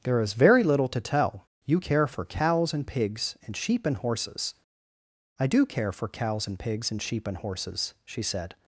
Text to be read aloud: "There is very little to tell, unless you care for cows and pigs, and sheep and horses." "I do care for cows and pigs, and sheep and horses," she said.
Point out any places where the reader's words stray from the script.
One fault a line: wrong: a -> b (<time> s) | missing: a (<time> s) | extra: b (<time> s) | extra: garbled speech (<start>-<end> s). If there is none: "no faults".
missing: unless (1.5 s)